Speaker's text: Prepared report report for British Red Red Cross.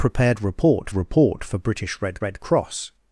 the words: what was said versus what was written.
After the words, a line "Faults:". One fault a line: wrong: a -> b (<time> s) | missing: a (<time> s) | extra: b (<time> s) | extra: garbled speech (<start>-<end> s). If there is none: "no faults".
Prepared report report for British Red Red Cross.
Faults:
no faults